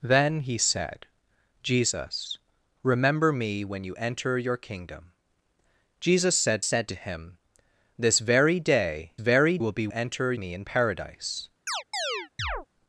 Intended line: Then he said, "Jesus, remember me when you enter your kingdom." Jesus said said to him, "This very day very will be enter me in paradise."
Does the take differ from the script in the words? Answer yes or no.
no